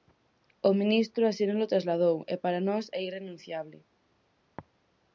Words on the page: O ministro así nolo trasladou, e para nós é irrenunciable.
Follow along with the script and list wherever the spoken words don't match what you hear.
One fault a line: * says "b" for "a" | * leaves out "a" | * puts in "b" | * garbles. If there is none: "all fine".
all fine